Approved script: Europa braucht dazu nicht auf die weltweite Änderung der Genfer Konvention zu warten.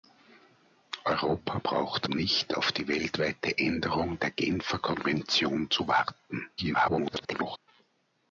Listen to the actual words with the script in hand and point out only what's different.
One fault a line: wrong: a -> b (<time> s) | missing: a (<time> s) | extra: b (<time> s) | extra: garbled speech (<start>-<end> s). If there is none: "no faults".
missing: dazu (2.1 s)
extra: garbled speech (6.6-7.6 s)